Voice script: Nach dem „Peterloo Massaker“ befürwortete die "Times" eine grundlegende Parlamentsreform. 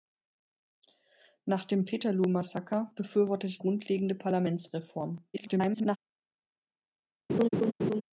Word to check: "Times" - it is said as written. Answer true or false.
false